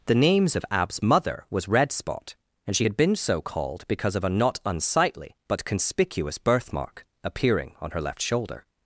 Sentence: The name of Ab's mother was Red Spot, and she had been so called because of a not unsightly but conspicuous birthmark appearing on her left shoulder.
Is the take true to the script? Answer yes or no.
no